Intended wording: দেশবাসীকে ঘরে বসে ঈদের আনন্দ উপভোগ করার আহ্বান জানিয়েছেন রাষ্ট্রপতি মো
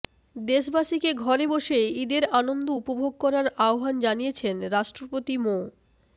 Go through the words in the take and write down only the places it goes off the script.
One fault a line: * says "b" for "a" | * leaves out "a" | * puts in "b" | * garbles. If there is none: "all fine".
all fine